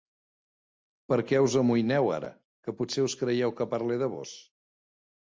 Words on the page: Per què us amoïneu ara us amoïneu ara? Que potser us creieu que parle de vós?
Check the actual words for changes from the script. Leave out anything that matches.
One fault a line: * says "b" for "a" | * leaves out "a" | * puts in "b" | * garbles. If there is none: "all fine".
* leaves out "us amoïneu ara"